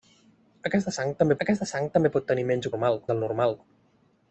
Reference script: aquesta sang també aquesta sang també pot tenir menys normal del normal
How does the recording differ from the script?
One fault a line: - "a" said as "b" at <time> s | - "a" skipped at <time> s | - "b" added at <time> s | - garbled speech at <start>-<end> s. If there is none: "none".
none